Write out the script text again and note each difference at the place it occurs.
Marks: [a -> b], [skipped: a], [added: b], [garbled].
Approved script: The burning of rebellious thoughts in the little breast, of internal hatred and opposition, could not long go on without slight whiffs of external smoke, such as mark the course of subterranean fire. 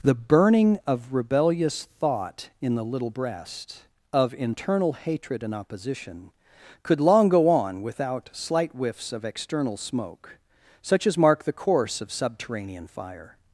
The burning of rebellious [thoughts -> thought] in the little breast, of internal hatred and opposition, could [skipped: not] long go on without slight whiffs of external smoke, such as mark the course of subterranean fire.